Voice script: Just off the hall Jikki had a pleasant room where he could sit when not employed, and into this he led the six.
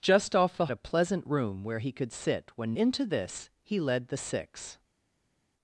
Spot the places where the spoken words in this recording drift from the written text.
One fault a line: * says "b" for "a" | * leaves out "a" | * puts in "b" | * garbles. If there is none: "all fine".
* leaves out "hall Jikki had"
* leaves out "not employed and"